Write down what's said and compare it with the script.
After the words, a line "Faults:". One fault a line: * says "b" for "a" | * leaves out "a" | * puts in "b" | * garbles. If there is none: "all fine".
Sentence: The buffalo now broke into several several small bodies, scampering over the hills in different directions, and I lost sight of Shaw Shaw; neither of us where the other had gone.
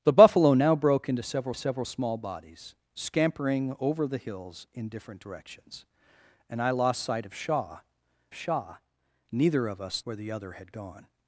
The buffalo now broke into several several small bodies, scampering over the hills in different directions, and I lost sight of Shaw Shaw; neither of us where the other had gone.
Faults:
all fine